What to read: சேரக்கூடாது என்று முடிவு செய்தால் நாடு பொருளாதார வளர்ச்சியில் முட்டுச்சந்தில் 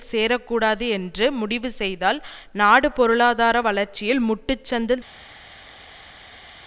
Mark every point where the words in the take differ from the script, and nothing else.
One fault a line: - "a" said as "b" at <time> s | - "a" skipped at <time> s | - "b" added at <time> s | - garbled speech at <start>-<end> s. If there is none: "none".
none